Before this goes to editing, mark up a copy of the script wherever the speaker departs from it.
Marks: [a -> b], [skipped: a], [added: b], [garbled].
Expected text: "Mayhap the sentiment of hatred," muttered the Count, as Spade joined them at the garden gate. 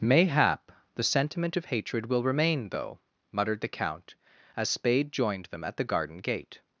"Mayhap the sentiment of hatred," [added: will remain though] muttered the Count, as Spade joined them at the garden gate.